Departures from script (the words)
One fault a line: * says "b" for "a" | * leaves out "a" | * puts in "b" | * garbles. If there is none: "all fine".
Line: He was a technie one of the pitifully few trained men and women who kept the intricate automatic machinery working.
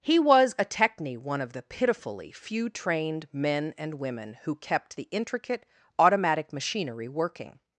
all fine